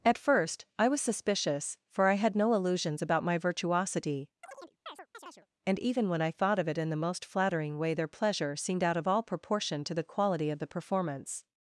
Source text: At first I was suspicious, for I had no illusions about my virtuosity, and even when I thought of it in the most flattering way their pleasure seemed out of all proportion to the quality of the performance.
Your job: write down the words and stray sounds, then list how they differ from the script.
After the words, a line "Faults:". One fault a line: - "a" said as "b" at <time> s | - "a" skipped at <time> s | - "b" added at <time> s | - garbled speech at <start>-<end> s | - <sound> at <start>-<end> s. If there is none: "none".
At first I was suspicious, for I had no illusions about my virtuosity, and even when I thought of it in the most flattering way their pleasure seemed out of all proportion to the quality of the performance.
Faults:
- chirp at 4.4-5.5 s